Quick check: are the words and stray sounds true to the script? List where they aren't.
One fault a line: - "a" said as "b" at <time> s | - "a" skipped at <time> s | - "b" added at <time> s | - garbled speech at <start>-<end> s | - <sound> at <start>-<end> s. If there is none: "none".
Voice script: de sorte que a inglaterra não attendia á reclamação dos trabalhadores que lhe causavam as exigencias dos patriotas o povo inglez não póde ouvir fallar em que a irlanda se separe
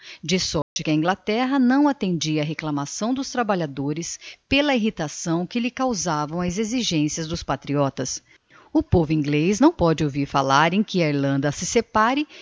- dropout at 0.6-0.8 s
- "pela irritação" added at 4.5 s